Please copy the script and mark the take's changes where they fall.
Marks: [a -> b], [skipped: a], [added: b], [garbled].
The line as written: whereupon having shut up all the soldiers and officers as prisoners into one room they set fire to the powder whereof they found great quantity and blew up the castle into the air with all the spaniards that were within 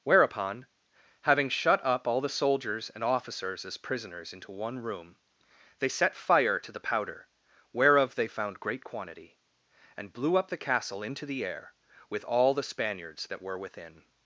whereupon having shut up all the soldiers and officers as prisoners into one room they set fire to the powder whereof they found great quantity and blew up the castle into the air with all the spaniards that were within